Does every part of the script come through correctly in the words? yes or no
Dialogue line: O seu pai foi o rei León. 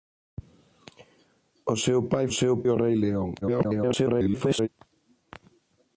no